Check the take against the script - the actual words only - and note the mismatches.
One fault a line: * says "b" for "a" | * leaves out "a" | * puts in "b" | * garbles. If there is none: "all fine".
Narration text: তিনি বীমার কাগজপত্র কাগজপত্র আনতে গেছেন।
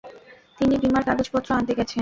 * leaves out "কাগজপত্র"